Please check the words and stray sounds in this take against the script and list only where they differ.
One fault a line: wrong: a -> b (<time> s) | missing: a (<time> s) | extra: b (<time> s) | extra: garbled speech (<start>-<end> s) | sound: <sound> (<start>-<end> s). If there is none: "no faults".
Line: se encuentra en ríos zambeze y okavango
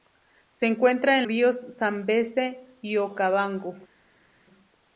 no faults